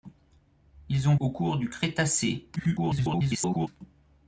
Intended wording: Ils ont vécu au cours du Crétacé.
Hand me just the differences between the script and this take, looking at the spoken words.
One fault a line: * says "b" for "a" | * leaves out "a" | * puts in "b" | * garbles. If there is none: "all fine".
* leaves out "vécu"
* garbles